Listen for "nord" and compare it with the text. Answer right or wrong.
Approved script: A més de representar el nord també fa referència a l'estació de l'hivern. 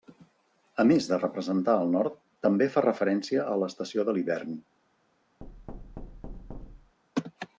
right